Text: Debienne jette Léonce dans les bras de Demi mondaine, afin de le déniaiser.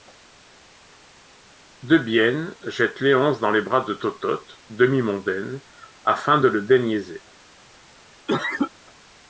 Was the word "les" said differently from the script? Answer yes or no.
no